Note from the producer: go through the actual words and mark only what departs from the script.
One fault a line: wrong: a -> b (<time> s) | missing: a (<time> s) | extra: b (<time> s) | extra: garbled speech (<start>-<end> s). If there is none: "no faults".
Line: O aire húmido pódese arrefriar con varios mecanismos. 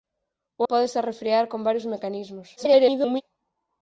missing: aire húmido (0.6 s)
extra: garbled speech (2.6-3.2 s)